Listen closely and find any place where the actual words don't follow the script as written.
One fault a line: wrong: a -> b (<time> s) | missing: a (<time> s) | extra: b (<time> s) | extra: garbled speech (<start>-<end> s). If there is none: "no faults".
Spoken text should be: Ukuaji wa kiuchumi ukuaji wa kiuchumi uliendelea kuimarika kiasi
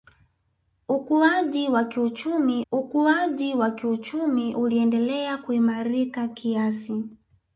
no faults